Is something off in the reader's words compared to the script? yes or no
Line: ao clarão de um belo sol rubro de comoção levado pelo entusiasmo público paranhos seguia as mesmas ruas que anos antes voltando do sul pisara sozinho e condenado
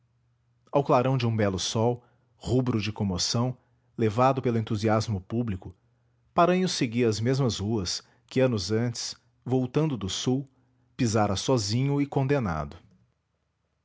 no